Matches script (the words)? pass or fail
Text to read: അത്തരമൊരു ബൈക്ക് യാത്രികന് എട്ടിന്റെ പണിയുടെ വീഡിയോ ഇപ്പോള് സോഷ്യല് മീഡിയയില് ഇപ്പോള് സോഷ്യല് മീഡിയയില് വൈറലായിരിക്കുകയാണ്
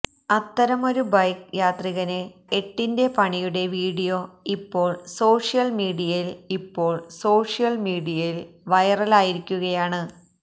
pass